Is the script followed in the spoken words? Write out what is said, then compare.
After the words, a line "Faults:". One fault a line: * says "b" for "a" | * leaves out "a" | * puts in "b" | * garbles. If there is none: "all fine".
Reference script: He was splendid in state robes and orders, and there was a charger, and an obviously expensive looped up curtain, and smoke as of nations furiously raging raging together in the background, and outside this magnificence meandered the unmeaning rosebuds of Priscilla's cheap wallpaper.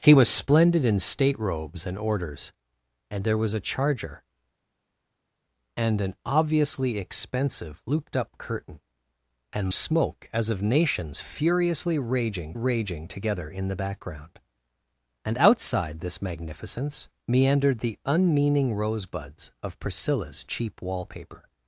He was splendid in state robes and orders, and there was a charger, and an obviously expensive looped up curtain, and smoke as of nations furiously raging raging together in the background, and outside this magnificence meandered the unmeaning rosebuds of Priscilla's cheap wallpaper.
Faults:
all fine